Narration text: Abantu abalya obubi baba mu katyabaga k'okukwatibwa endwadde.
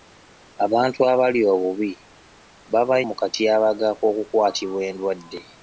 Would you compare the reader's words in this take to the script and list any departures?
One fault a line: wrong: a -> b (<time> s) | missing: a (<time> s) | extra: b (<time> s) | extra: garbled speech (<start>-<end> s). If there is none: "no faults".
no faults